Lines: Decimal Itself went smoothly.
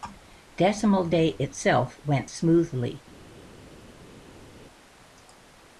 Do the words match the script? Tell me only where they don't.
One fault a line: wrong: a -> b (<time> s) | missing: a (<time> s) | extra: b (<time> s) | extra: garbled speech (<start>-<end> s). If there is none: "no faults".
extra: Day (1.1 s)